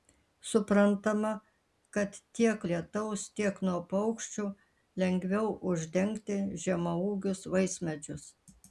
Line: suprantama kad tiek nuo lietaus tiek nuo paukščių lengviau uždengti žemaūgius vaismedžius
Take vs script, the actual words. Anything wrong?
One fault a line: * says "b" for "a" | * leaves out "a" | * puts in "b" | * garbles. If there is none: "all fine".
* leaves out "nuo"